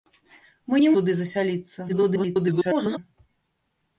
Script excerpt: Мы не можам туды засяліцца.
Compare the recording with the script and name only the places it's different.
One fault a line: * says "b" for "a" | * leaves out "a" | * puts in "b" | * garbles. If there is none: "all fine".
* leaves out "можам"
* garbles